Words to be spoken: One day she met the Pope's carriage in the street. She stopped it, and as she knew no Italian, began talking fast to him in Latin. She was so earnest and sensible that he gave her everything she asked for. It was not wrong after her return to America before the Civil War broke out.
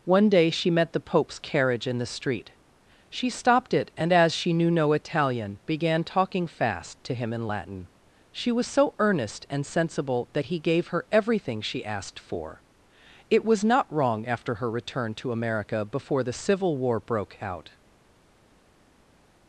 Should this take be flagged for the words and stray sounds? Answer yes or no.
no